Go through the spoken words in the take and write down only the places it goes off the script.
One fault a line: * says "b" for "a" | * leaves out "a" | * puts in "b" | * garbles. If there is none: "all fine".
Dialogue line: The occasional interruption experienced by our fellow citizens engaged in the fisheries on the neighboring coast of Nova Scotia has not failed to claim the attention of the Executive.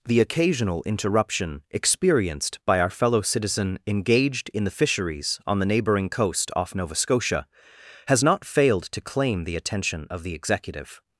* says "citizen" for "citizens"
* says "off" for "of"